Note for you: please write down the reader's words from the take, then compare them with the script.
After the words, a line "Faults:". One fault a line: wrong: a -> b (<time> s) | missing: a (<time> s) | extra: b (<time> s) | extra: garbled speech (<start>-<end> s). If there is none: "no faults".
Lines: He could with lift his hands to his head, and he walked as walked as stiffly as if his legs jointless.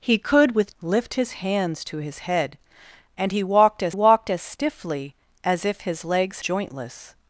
He could with lift his hands to his head, and he walked as walked as stiffly as if his legs jointless.
Faults:
no faults